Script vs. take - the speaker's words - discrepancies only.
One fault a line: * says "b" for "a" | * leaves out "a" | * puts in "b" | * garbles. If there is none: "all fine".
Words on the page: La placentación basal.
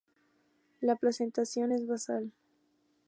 * puts in "es"